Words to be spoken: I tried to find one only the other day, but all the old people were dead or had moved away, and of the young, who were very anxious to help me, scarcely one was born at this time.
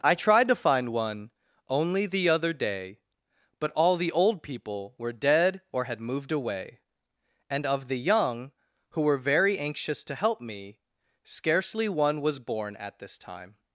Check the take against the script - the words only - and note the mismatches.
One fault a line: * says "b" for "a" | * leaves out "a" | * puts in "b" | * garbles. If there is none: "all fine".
all fine